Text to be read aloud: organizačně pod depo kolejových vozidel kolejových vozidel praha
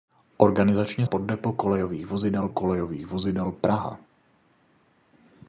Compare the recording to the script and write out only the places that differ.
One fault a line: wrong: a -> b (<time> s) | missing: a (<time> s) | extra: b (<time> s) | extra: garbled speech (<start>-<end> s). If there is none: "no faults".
no faults